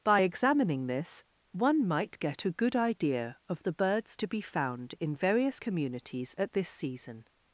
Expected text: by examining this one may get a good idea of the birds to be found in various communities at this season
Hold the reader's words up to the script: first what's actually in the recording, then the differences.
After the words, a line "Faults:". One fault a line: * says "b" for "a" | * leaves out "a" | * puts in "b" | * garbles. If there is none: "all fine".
by examining this one might get a good idea of the birds to be found in various communities at this season
Faults:
* says "might" for "may"